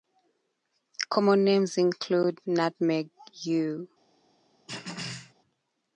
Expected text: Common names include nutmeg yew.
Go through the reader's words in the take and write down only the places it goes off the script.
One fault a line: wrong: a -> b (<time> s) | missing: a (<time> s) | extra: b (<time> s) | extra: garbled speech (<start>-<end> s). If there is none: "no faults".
no faults